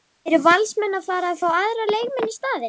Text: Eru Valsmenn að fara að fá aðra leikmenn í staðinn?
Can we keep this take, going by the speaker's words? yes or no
yes